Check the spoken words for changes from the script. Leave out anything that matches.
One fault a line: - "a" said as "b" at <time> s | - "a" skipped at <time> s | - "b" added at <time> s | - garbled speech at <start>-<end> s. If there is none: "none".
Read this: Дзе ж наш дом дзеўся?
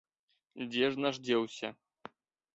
- "дом" skipped at 1.1 s